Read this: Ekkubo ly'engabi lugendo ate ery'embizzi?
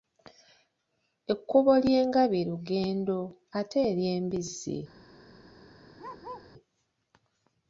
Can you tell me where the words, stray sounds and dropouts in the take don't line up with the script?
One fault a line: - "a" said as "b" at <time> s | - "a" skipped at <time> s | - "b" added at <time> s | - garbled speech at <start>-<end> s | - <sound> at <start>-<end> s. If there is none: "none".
- bark at 6.0-6.5 s